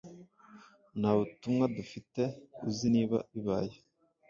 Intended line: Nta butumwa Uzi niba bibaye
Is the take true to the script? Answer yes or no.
no